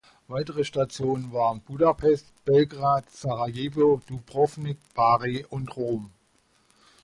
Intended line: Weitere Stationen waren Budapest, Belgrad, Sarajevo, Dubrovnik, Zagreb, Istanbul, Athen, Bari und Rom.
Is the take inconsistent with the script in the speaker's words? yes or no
yes